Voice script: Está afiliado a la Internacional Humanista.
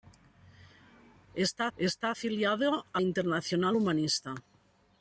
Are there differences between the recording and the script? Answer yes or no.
yes